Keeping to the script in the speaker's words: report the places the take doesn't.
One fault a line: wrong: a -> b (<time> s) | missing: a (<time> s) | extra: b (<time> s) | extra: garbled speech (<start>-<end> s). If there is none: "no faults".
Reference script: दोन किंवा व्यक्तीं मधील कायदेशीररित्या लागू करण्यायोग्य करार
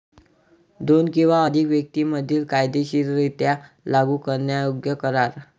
extra: अधिक (1.5 s)